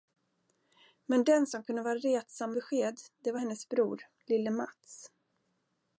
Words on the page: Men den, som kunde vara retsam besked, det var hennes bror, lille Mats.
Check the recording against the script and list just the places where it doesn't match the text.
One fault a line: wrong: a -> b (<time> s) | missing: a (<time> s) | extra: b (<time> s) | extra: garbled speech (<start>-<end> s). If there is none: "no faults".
no faults